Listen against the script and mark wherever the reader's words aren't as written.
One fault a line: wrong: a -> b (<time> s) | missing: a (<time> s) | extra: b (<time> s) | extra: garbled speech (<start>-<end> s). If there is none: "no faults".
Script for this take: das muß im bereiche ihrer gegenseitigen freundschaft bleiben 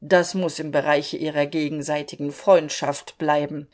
no faults